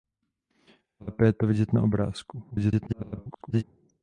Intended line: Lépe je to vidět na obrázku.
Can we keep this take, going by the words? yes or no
no